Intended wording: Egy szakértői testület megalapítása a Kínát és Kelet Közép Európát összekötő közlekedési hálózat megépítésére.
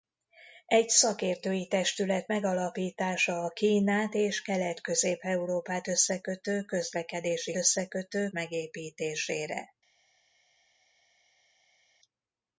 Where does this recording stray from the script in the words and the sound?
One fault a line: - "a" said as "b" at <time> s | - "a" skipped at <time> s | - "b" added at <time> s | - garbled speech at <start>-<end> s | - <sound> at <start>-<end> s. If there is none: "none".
- "hálózat" said as "összekötő" at 7.5 s